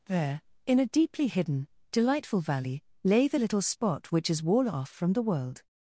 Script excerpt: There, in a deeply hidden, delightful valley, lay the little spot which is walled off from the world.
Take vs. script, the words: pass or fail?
fail